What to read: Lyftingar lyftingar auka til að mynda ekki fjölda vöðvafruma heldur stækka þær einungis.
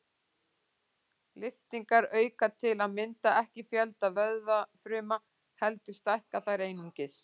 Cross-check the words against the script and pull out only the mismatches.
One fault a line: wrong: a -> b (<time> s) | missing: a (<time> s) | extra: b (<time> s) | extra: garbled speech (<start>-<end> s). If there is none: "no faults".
missing: lyftingar (2.1 s)